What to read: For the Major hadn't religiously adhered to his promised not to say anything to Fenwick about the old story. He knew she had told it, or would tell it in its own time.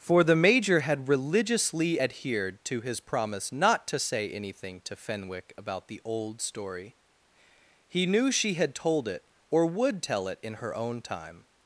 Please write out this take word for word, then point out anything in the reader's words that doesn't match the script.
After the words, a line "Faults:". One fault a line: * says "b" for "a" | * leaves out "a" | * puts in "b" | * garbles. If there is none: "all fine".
For the Major had religiously adhered to his promise not to say anything to Fenwick about the old story. He knew she had told it, or would tell it in her own time.
Faults:
* says "had" for "hadn't"
* says "promise" for "promised"
* says "her" for "its"